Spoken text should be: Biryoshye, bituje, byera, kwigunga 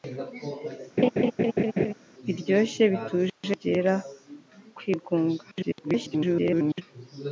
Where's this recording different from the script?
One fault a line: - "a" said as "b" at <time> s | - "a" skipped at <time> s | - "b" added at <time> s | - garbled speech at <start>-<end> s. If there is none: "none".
- garbled speech at 5.5-6.8 s